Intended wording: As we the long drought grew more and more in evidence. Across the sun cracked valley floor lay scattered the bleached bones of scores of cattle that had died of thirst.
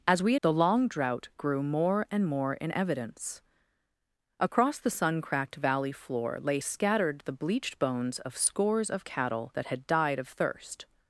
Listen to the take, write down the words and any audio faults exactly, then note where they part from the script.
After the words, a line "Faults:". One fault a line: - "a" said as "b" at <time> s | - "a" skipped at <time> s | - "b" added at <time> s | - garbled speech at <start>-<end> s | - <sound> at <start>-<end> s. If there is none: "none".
As we the long drought grew more and more in evidence. Across the sun cracked valley floor lay scattered the bleached bones of scores of cattle that had died of thirst.
Faults:
none